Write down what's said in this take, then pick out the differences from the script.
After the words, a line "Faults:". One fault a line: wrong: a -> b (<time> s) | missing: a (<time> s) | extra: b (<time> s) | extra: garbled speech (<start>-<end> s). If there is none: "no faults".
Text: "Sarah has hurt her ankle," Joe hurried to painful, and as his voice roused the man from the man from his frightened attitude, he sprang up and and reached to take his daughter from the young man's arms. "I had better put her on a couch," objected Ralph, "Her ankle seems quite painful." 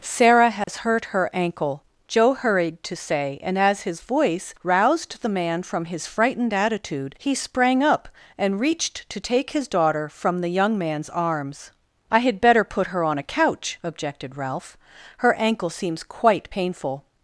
"Sarah has hurt her ankle," Joe hurried to say, and as his voice roused the man from his frightened attitude, he sprang up and reached to take his daughter from the young man's arms. "I had better put her on a couch," objected Ralph, "Her ankle seems quite painful."
Faults:
wrong: painful -> say (3.0 s)
missing: the man from (5.9 s)
missing: and (8.6 s)